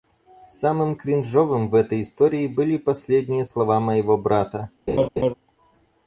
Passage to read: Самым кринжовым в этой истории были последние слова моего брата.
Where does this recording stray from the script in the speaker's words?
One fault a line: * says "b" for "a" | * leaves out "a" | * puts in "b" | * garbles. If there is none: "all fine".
all fine